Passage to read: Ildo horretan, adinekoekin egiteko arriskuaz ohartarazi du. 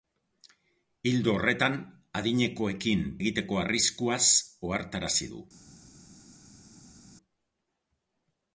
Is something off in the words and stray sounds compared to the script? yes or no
no